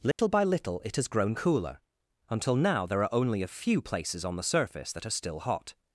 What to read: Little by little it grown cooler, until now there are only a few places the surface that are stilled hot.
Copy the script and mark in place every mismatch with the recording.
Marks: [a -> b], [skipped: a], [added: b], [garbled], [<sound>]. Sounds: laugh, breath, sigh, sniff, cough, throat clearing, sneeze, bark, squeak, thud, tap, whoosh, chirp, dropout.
Little [dropout] by little it [added: has] grown cooler, until now there are only a few places [added: on] the surface that are [stilled -> still] hot.